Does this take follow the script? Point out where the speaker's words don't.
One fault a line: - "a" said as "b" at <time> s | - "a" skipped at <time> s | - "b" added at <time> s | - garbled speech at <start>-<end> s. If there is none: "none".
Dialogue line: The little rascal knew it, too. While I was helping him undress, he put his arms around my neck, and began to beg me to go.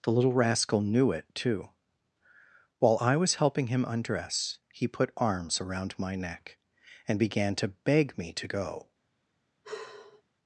- "his" skipped at 5.1 s